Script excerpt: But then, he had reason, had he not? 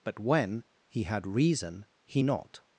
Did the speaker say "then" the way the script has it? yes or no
no